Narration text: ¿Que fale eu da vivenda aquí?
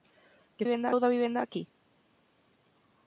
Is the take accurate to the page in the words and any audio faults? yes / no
no